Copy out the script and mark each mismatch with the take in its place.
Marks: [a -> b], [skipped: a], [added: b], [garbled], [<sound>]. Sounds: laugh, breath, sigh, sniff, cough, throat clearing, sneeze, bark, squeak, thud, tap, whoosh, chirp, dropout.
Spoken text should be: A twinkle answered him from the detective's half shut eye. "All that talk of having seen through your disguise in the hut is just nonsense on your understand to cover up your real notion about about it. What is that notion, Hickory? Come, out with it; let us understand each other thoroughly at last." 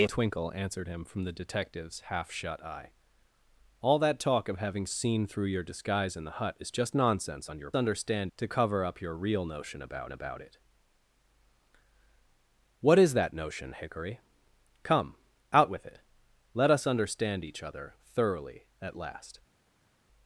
A twinkle answered him from the detective's half shut eye. "All that talk of having seen through your disguise in the hut is just nonsense on your understand to cover up your real notion about about it. What is that notion, Hickory? Come, out with it; let us understand each other thoroughly at last."